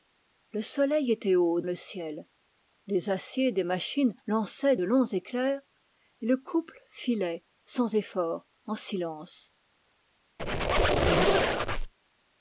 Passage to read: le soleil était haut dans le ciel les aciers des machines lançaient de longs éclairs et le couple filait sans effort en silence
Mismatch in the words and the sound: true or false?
true